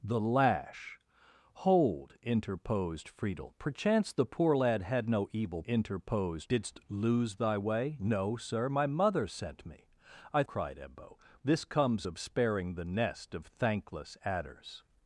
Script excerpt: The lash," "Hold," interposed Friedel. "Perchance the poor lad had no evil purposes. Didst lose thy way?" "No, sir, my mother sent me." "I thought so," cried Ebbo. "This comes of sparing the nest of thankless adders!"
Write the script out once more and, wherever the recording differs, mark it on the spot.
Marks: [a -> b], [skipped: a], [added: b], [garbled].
The lash," "Hold," interposed Friedel. "Perchance the poor lad had no evil [purposes. -> interposed] Didst lose thy way?" "No, sir, my mother sent me." "I [skipped: thought so,"] cried Ebbo. "This comes of sparing the nest of thankless adders!"